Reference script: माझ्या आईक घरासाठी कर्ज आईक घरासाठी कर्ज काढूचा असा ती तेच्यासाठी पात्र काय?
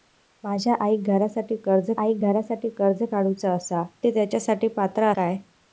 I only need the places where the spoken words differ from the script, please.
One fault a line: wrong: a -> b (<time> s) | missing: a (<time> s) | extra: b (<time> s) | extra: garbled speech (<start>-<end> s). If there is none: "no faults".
no faults